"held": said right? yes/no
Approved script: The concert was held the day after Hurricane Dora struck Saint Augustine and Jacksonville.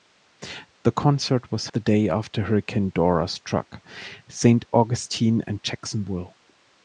no